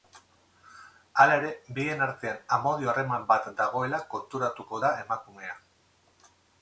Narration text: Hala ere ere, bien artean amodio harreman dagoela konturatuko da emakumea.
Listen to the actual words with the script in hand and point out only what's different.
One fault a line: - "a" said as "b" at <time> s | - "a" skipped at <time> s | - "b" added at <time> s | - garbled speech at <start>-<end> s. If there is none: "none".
- "ere" skipped at 1.5 s
- "bat" added at 3.3 s